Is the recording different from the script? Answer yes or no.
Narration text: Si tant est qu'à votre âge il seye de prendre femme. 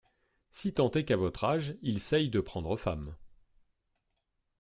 no